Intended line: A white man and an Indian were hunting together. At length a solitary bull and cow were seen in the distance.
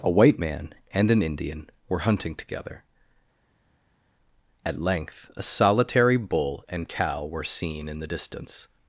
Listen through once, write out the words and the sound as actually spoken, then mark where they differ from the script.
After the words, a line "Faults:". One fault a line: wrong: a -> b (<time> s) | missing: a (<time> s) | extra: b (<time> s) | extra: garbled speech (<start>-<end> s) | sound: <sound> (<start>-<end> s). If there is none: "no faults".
A white man and an Indian were hunting together. At length a solitary bull and cow were seen in the distance.
Faults:
no faults